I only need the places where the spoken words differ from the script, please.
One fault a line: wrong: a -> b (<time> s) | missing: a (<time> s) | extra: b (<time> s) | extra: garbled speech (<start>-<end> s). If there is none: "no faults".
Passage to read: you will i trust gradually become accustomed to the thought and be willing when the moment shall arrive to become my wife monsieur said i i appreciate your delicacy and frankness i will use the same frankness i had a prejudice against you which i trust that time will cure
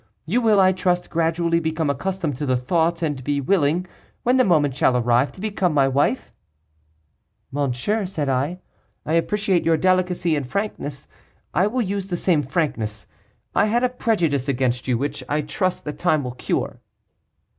no faults